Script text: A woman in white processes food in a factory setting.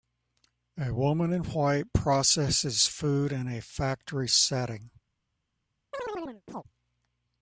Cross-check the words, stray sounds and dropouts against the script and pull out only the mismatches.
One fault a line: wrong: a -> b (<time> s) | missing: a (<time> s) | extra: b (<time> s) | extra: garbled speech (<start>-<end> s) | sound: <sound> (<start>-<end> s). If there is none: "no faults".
sound: chirp (5.9-6.6 s)